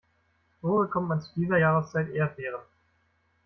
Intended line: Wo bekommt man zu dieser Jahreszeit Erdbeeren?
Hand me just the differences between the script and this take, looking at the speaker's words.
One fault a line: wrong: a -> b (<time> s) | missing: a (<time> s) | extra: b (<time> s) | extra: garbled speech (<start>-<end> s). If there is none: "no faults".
no faults